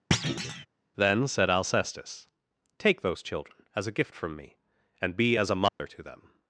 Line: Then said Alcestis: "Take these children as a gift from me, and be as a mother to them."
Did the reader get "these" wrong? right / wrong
wrong